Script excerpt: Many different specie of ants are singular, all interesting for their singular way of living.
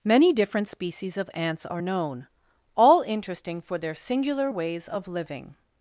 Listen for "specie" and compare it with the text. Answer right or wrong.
wrong